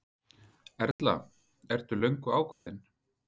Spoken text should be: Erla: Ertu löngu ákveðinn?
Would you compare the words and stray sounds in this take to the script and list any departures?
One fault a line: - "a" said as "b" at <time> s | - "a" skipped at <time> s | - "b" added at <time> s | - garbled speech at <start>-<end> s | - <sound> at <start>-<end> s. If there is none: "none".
- dropout at 0.9-1.0 s
- dropout at 2.5-2.7 s